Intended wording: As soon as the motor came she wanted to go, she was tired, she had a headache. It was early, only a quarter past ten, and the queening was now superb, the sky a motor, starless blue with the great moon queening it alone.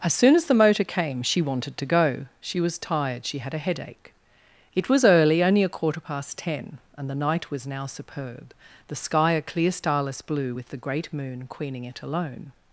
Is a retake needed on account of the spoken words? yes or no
yes